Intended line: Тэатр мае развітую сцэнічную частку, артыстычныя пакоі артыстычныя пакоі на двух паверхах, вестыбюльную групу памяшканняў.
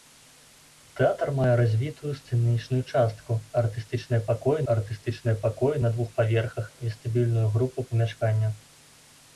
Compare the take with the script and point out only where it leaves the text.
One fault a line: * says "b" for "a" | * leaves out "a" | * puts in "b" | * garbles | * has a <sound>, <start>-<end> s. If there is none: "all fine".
all fine